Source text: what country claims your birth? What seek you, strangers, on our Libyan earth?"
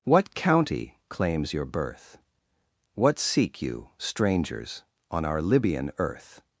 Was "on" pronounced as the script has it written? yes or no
yes